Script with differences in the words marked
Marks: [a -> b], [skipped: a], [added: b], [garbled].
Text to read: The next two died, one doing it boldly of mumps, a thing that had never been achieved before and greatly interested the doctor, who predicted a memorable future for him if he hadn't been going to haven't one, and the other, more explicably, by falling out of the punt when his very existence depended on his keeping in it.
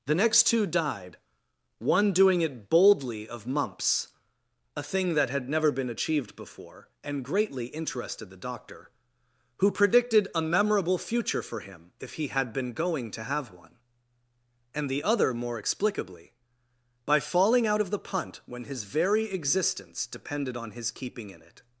The next two died, one doing it boldly of mumps, a thing that had never been achieved before and greatly interested the doctor, who predicted a memorable future for him if he [hadn't -> had] been going to [haven't -> have] one, and the other, more explicably, by falling out of the punt when his very existence depended on his keeping in it.